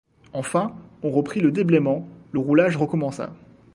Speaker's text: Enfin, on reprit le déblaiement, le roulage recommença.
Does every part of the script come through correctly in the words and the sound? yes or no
yes